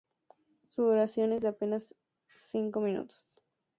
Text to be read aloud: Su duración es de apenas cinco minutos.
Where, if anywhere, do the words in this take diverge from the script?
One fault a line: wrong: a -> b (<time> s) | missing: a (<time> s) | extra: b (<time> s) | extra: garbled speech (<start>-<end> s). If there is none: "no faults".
no faults